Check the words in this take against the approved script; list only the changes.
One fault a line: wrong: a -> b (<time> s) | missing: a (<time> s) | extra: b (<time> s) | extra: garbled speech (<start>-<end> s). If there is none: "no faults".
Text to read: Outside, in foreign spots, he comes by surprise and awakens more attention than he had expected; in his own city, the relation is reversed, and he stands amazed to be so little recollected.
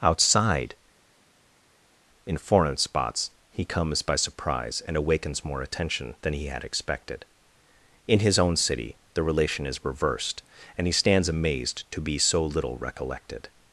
no faults